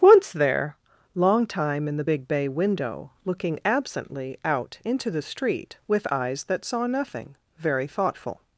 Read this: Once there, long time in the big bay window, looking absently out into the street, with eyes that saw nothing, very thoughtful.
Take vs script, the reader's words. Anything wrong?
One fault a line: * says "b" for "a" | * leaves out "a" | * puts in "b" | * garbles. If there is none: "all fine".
all fine